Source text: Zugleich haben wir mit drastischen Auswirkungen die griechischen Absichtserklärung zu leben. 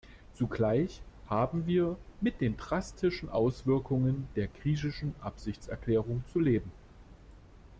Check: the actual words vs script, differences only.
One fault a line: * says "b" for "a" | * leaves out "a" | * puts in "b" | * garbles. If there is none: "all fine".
* puts in "den"
* says "der" for "die"